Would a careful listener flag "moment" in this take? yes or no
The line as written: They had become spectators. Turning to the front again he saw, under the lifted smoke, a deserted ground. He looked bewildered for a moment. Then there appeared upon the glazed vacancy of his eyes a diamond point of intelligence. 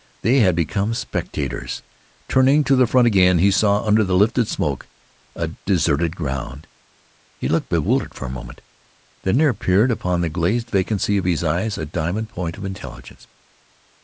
no